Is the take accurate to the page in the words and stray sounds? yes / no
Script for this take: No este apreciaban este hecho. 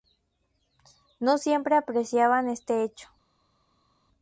no